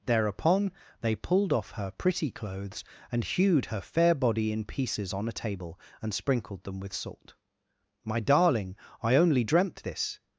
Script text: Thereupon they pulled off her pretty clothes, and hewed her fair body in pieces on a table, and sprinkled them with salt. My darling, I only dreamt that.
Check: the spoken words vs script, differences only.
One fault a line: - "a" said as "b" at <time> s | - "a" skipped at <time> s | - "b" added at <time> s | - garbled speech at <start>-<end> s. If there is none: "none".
- "that" said as "this" at 9.8 s